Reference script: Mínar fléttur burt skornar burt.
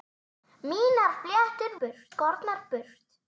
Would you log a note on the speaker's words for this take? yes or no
no